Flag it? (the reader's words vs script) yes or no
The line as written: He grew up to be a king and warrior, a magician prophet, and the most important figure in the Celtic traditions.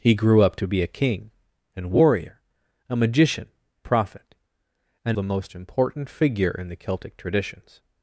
no